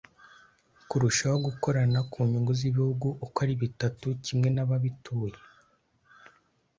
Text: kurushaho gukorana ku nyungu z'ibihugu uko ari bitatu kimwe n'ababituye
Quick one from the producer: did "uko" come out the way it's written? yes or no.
yes